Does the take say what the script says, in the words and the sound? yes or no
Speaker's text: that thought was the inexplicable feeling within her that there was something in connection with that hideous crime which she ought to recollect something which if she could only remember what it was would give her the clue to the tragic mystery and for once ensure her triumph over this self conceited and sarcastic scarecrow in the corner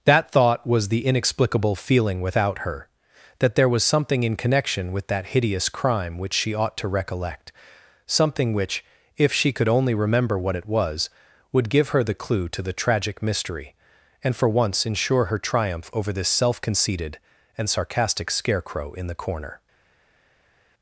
no